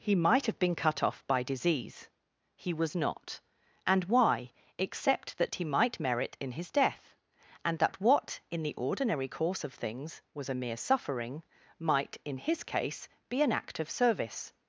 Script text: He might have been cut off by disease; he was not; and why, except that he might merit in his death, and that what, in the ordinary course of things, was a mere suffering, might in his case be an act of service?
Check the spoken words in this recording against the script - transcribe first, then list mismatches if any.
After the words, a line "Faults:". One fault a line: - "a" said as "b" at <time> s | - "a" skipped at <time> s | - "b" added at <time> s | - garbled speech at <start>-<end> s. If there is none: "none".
He might have been cut off by disease; he was not; and why, except that he might merit in his death, and that what, in the ordinary course of things, was a mere suffering, might in his case be an act of service?
Faults:
none